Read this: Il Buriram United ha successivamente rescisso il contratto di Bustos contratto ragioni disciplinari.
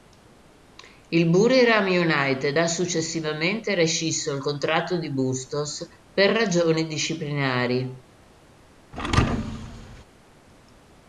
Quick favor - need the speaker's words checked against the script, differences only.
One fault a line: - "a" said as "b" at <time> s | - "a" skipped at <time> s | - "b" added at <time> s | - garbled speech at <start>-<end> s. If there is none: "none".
- "contratto" said as "per" at 6.1 s